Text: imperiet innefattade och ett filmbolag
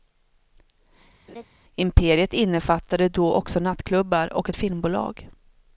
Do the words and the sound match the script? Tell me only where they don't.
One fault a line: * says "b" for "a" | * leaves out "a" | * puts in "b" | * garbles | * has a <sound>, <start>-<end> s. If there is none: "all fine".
* has a laugh, 1.3-1.5 s
* puts in "då också nattklubbar"